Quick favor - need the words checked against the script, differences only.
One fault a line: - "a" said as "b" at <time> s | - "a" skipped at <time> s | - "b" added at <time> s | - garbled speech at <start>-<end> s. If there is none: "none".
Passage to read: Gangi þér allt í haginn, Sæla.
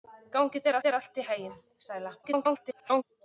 - "þér" added at 0.9 s
- garbled speech at 2.2-3.0 s